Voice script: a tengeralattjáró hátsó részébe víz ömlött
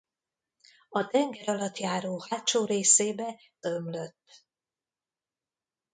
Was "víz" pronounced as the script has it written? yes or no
no